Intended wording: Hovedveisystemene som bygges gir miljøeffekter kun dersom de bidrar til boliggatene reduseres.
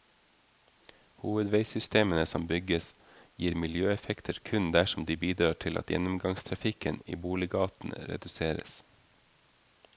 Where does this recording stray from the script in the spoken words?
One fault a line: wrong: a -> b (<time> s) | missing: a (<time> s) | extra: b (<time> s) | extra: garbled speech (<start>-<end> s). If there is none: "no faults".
extra: at gjennomgangstrafikken i (5.8 s)